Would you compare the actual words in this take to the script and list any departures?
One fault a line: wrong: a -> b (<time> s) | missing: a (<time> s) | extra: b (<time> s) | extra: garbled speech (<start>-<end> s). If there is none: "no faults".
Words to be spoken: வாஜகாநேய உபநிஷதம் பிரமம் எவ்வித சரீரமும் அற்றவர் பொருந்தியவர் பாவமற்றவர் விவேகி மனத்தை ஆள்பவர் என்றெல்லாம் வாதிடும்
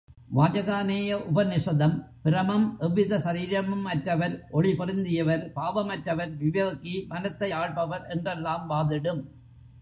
extra: ஒளி (4.5 s)